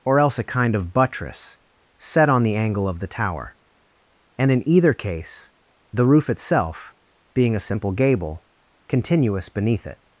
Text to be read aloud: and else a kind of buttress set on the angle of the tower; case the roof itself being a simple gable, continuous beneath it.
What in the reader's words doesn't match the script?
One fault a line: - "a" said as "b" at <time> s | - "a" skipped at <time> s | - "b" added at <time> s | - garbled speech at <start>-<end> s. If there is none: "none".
- "and" said as "or" at 0.0 s
- "and in either" added at 4.4 s